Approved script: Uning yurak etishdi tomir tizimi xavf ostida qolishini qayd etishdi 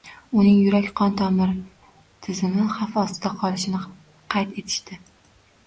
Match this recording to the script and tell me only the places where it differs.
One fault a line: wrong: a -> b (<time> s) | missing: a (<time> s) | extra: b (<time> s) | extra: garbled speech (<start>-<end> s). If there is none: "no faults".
wrong: etishdi -> qon (1.0 s)